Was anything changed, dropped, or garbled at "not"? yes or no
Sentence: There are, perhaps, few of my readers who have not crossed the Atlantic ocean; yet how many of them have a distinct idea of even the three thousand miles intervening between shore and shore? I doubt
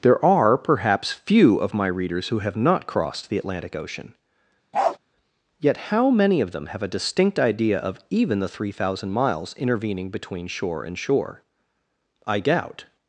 no